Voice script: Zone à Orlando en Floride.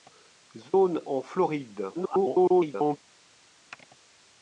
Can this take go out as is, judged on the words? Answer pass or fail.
fail